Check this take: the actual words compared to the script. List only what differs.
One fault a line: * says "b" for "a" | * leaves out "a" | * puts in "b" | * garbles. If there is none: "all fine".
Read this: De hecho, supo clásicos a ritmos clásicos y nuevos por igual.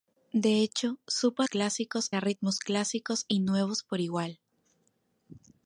all fine